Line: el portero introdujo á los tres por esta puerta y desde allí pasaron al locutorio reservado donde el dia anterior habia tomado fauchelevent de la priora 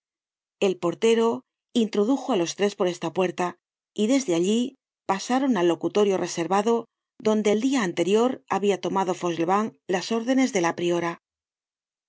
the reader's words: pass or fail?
fail